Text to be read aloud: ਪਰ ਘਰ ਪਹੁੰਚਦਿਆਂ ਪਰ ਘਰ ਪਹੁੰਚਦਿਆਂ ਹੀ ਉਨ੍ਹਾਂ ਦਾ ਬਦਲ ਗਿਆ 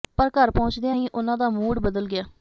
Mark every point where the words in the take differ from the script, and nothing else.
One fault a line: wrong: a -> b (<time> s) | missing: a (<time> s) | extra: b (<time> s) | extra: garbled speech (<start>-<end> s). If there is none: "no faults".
missing: ਪਰ ਘਰ ਪਹੁੰਚਦਿਆਂ (1.0 s)
extra: ਮੂਡ (1.5 s)